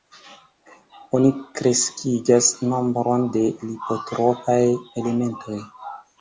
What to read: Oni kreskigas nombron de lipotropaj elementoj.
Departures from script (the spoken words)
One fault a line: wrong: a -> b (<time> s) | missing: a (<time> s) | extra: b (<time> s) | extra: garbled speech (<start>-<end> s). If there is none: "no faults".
no faults